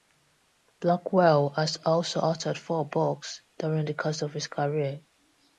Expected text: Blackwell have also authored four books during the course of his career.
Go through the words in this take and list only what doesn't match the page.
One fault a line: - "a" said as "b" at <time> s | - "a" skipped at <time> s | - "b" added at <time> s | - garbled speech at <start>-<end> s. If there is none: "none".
- "have" said as "has" at 1.6 s